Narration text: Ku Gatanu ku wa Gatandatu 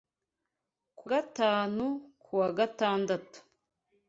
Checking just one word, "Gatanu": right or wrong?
right